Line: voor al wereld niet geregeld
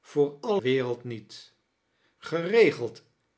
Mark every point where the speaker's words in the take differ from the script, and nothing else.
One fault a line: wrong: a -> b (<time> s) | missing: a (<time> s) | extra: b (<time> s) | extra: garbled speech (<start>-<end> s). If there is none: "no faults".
no faults